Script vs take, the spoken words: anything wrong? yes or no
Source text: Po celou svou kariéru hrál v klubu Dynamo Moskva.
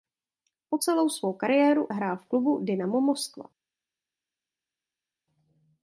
no